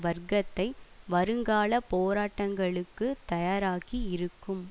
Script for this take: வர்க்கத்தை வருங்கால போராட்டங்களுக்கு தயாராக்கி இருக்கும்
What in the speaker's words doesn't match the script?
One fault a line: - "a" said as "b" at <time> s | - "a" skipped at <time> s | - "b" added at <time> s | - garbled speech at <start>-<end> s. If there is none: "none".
none